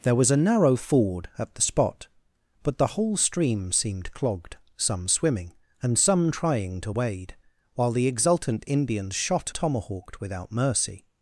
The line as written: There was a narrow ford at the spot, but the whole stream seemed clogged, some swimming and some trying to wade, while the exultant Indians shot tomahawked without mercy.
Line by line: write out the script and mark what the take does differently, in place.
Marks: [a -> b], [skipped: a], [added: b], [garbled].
There was a narrow ford at the spot, but the whole stream seemed clogged, some swimming and some trying to wade, while the exultant Indians shot tomahawked without mercy.